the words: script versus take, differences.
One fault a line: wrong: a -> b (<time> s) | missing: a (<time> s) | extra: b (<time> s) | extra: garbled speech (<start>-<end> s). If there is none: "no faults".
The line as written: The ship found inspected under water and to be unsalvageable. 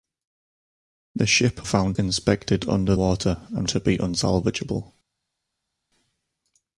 no faults